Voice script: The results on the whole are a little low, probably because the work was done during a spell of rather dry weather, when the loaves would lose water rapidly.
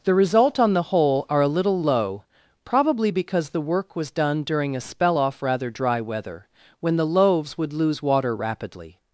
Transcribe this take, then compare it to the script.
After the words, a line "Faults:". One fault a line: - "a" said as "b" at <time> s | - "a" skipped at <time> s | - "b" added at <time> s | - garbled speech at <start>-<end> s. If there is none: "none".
The result on the whole are a little low, probably because the work was done during a spell off rather dry weather, when the loaves would lose water rapidly.
Faults:
- "results" said as "result" at 0.1 s
- "of" said as "off" at 5.2 s